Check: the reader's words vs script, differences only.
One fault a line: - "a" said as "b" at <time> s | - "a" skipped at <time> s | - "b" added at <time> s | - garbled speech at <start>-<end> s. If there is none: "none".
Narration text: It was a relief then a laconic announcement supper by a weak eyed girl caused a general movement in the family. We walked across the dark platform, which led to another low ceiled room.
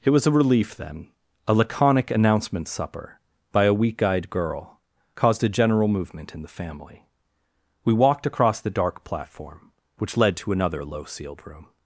none